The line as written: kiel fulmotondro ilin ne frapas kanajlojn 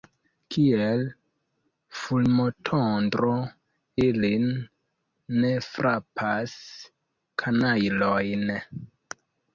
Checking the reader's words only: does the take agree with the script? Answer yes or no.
yes